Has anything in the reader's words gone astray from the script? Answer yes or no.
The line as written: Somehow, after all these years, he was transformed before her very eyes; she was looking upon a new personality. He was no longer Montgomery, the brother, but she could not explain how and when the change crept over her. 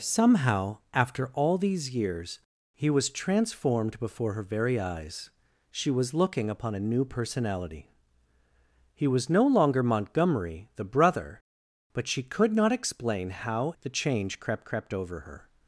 yes